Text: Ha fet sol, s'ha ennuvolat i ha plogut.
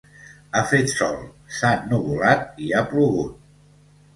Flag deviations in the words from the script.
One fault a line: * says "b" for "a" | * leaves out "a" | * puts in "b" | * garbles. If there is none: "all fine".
all fine